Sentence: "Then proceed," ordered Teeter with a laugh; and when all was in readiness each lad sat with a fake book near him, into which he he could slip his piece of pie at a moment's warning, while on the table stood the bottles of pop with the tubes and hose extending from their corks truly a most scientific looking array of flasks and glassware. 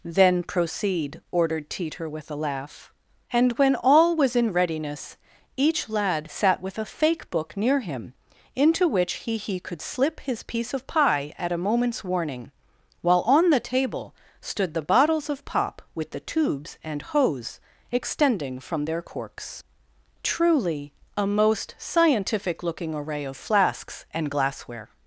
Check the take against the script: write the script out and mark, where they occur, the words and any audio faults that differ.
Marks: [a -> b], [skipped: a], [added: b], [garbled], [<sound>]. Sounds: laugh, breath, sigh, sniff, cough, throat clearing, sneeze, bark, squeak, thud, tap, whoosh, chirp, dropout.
"Then proceed," ordered Teeter with a laugh; and when all was in readiness each lad sat with a fake book near him, into which he he could slip his piece of pie at a moment's warning, while on the table stood the bottles of pop with the tubes and hose extending from their corks truly a most scientific looking array of flasks and glassware.